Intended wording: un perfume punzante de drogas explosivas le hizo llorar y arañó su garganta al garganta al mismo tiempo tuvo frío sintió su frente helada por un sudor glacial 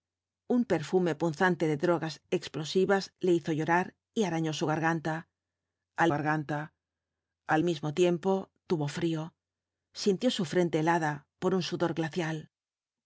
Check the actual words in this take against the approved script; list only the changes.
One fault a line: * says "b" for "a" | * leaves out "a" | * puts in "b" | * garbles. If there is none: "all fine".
all fine